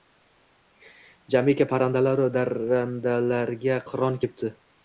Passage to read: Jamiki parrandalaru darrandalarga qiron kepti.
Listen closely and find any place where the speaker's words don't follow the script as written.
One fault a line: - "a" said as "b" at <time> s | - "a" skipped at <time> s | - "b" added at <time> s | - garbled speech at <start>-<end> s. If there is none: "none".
none